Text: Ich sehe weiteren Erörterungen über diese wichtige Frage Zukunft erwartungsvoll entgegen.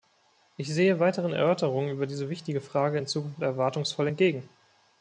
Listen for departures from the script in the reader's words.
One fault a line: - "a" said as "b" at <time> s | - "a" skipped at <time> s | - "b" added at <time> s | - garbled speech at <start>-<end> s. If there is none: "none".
- "in" added at 2.9 s